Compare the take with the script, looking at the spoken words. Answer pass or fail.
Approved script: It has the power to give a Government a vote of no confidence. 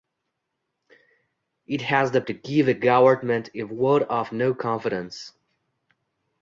fail